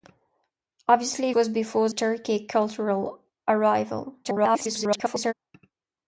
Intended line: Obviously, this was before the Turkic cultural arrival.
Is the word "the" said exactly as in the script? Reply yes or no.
no